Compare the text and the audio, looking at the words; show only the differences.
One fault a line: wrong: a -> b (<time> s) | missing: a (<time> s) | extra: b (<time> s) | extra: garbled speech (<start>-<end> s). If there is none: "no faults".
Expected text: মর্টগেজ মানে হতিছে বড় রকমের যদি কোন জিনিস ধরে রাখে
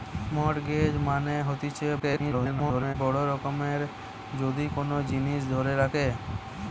extra: garbled speech (2.0-3.0 s)